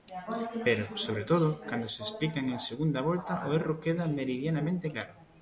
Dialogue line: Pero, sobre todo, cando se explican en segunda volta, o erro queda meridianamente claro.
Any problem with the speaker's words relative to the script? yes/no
no